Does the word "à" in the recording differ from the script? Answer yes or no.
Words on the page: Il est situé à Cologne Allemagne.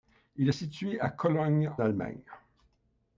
no